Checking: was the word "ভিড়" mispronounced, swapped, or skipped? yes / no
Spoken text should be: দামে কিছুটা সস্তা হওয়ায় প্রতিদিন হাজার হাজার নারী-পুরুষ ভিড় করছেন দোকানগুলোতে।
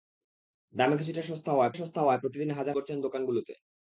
yes